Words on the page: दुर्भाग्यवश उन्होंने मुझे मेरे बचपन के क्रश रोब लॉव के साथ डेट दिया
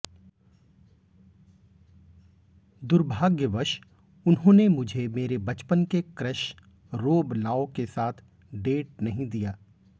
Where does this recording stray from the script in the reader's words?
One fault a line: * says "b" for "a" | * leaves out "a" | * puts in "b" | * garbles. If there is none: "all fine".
* puts in "नहीं"